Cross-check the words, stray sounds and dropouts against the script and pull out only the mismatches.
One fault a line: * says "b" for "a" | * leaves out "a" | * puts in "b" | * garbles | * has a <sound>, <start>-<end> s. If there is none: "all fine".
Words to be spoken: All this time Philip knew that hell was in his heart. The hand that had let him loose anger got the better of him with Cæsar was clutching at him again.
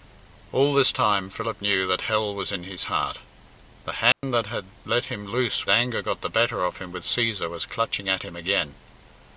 * has a dropout, 4.1-4.2 s